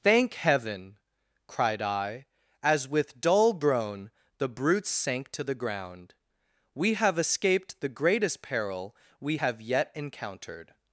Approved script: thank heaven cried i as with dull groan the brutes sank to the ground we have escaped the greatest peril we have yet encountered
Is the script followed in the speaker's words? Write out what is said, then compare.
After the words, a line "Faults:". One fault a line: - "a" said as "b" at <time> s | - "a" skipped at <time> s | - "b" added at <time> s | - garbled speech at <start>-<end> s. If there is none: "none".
thank heaven cried i as with dull groan the brutes sank to the ground we have escaped the greatest peril we have yet encountered
Faults:
none